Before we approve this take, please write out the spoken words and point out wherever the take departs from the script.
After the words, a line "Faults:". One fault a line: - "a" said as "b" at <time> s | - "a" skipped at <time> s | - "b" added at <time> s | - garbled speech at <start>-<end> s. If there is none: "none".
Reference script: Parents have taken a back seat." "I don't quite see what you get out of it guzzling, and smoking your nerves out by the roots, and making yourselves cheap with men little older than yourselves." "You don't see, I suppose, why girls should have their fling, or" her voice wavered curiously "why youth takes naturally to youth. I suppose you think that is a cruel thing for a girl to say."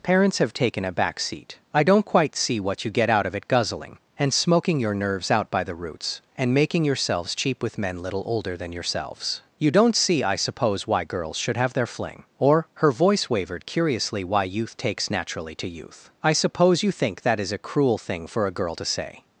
Parents have taken a back seat." "I don't quite see what you get out of it guzzling, and smoking your nerves out by the roots, and making yourselves cheap with men little older than yourselves." "You don't see, I suppose, why girls should have their fling, or" her voice wavered curiously "why youth takes naturally to youth. I suppose you think that is a cruel thing for a girl to say."
Faults:
none